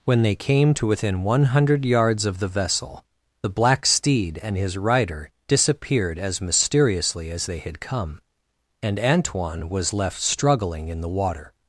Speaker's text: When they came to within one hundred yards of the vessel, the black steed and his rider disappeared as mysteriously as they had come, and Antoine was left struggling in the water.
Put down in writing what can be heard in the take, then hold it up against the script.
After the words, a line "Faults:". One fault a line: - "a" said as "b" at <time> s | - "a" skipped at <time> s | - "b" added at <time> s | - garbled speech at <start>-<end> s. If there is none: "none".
When they came to within one hundred yards of the vessel, the black steed and his rider disappeared as mysteriously as they had come, and Antoine was left struggling in the water.
Faults:
none